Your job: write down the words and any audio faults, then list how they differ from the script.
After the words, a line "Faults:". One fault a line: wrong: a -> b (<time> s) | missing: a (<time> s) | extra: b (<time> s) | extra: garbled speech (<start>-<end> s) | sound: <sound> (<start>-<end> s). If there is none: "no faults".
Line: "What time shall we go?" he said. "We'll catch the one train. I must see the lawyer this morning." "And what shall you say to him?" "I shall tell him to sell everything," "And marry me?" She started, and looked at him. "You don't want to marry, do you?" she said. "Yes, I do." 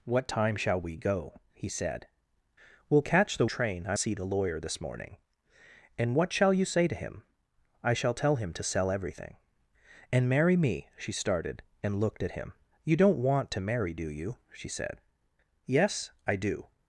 "What time shall we go?" he said. "We'll catch the train. I see the lawyer this morning." "And what shall you say to him?" "I shall tell him to sell everything," "And marry me?" She started, and looked at him. "You don't want to marry, do you?" she said. "Yes, I do."
Faults:
missing: one (3.5 s)
missing: must (4.0 s)